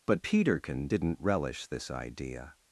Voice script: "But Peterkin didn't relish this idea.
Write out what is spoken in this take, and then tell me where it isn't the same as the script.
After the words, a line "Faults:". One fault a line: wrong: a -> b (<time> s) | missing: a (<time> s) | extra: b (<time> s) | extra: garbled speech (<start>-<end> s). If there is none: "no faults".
"But Peterkin didn't relish this idea.
Faults:
no faults